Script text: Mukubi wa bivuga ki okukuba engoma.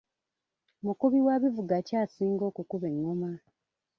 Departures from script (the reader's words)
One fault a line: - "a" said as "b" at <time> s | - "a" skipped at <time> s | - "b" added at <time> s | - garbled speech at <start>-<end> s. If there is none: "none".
- "asinga" added at 2.0 s